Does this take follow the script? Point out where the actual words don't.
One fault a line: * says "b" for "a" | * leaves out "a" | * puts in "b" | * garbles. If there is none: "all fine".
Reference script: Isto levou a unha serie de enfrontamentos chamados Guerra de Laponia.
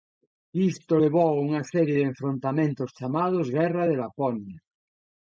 all fine